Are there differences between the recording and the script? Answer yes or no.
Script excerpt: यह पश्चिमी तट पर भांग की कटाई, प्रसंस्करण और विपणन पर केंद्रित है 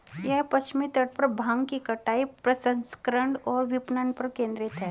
no